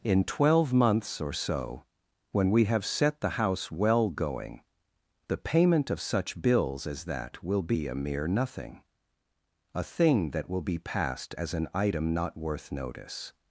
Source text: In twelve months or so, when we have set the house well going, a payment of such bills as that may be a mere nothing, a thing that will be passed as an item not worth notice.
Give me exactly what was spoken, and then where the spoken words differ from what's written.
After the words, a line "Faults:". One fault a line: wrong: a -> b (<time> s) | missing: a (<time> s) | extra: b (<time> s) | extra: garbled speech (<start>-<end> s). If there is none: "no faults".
In twelve months or so, when we have set the house well going, the payment of such bills as that will be a mere nothing, a thing that will be passed as an item not worth notice.
Faults:
wrong: a -> the (5.3 s)
wrong: may -> will (7.4 s)